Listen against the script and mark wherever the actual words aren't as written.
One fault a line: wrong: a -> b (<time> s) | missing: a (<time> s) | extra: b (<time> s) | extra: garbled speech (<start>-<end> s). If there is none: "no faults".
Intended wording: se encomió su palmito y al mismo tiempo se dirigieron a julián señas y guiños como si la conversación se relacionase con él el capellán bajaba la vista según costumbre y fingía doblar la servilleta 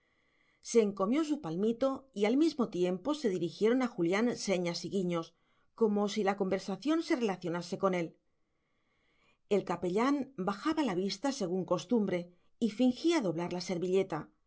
no faults